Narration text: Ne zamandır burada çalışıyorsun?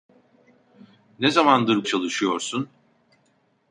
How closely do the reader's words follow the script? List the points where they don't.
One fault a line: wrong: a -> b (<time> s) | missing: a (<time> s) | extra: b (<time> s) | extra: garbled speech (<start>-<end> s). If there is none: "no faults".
missing: burada (1.9 s)